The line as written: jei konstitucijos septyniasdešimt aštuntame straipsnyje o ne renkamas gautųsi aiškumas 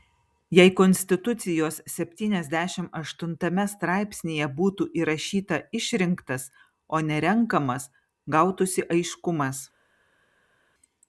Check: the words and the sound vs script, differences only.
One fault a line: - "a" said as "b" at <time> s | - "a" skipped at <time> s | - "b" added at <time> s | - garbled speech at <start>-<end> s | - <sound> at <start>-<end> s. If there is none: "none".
- "būtų įrašyta išrinktas" added at 4.6 s